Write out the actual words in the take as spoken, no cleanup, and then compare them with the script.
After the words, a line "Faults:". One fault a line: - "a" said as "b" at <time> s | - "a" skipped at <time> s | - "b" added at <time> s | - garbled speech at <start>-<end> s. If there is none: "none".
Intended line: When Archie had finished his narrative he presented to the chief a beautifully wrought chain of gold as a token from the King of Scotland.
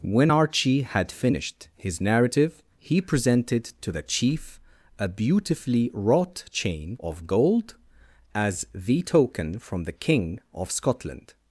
When Archie had finished his narrative he presented to the chief a beautifully wrought chain of gold as the token from the King of Scotland.
Faults:
- "a" said as "the" at 8.7 s